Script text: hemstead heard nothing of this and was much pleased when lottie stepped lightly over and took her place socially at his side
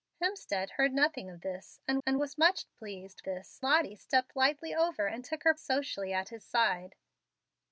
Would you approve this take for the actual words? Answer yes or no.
no